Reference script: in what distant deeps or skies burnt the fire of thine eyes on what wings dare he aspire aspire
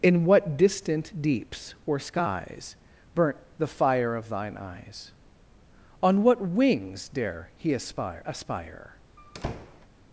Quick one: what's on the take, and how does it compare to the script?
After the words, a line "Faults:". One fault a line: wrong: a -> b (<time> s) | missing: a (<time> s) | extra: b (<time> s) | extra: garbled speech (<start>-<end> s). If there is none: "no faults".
in what distant deeps or skies burnt the fire of thine eyes on what wings dare he aspire aspire
Faults:
no faults